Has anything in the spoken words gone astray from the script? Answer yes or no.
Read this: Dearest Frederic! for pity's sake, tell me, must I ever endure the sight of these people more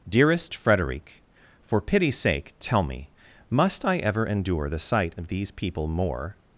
no